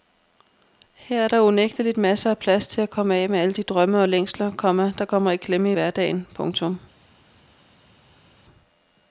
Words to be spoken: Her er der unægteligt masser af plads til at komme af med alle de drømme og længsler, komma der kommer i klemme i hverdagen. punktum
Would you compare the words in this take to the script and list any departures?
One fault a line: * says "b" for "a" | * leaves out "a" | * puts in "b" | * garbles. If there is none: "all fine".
all fine